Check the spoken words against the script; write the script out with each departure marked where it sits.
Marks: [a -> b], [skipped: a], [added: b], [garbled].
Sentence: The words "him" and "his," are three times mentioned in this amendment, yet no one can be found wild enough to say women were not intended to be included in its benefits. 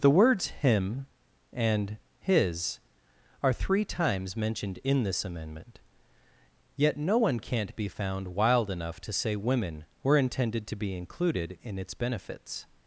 The words "him" and "his," are three times mentioned in this amendment, yet no one [can -> can't] be found wild enough to say women were [skipped: not] intended to be included in its benefits.